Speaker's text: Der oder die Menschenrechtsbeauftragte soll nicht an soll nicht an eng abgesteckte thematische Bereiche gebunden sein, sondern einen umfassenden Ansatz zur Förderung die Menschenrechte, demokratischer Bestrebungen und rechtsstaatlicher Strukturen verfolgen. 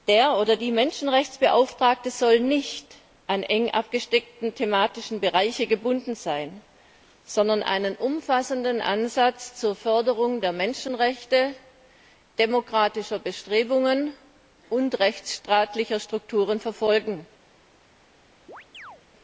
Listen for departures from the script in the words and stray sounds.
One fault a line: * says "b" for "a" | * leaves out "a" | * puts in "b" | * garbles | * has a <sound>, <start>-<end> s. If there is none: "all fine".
* leaves out "soll nicht an"
* says "der" for "die"
* has a chirp, 18.5-19.0 s